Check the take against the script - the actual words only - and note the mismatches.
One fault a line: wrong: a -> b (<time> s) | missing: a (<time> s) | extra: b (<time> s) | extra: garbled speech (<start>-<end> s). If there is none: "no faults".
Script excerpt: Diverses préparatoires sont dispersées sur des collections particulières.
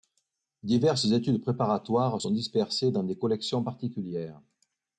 extra: études (1.1 s)
wrong: sur -> dans (2.9 s)